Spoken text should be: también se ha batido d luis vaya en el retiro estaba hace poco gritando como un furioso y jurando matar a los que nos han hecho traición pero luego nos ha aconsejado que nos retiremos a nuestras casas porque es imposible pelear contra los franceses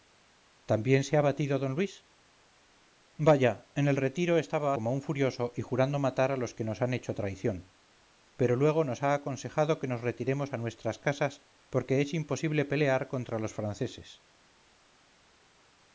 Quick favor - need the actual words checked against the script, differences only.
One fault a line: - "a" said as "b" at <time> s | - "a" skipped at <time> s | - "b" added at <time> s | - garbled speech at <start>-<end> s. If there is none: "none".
- "hace poco gritando" skipped at 4.7 s